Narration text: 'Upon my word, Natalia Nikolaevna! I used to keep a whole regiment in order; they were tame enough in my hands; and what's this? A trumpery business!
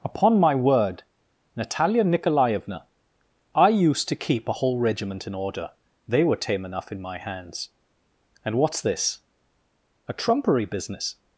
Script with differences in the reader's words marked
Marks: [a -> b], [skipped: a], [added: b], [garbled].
'Upon my word, Natalia Nikolaevna! I used to keep a whole regiment in order; they were tame enough in my hands; and what's this? A trumpery business!